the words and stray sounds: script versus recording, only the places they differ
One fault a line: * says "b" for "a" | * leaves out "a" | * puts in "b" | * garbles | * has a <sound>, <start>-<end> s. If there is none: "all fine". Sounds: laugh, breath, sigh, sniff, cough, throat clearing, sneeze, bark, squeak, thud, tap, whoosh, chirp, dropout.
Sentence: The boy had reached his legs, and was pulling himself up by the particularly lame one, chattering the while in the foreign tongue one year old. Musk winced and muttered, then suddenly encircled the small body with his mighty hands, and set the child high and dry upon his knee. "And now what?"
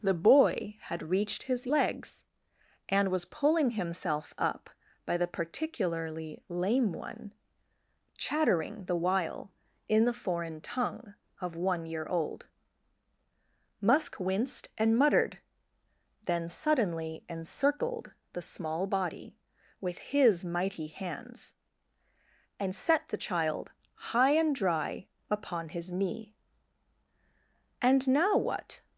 * puts in "of"